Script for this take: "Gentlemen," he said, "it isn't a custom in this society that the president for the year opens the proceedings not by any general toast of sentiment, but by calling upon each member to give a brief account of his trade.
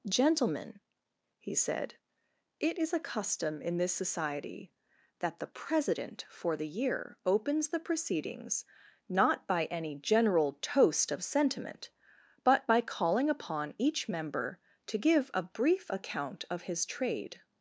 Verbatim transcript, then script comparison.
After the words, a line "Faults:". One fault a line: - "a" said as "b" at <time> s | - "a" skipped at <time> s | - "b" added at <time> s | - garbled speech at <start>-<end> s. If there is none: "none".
"Gentlemen," he said, "it is a custom in this society that the president for the year opens the proceedings not by any general toast of sentiment, but by calling upon each member to give a brief account of his trade.
Faults:
- "isn't" said as "is" at 2.8 s